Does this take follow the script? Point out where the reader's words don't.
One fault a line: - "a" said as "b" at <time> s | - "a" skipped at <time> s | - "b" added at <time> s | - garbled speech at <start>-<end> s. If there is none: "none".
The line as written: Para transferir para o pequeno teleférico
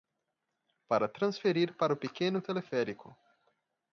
none